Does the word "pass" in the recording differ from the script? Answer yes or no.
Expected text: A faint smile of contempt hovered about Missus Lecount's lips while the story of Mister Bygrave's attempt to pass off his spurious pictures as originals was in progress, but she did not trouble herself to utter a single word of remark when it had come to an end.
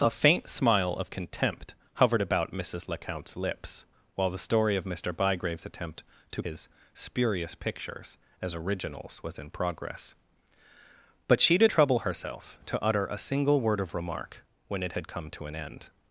yes